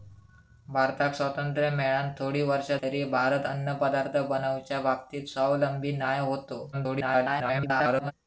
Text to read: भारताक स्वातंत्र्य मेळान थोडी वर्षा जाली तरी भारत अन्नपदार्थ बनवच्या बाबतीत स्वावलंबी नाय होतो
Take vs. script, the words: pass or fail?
fail